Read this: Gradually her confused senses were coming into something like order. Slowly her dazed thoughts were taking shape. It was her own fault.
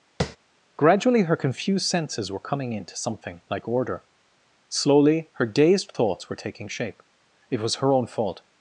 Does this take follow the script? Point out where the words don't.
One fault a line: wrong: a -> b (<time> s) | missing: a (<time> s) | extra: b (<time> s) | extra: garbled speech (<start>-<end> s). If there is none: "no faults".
no faults